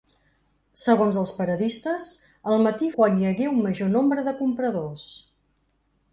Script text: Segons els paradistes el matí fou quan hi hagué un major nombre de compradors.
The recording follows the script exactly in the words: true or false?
false